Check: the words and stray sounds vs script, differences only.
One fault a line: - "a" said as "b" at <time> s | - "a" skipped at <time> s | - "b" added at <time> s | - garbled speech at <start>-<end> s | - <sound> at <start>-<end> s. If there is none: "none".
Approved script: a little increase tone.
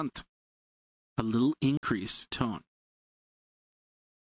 - dropout at 1.8-1.8 s